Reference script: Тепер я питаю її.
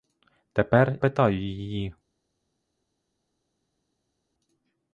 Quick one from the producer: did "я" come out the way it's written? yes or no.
no